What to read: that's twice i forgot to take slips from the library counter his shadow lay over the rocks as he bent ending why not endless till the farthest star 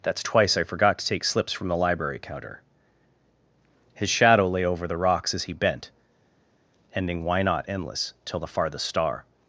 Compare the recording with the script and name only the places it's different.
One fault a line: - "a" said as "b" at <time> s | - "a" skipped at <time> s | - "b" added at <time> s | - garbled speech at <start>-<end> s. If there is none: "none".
none